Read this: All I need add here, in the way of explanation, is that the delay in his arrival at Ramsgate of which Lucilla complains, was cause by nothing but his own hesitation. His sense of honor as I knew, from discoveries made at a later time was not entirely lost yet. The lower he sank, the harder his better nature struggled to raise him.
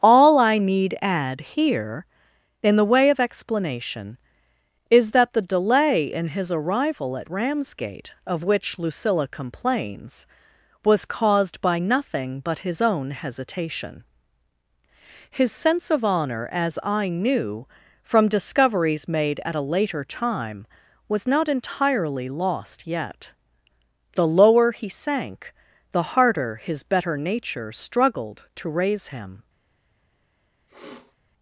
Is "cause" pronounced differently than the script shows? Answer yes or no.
yes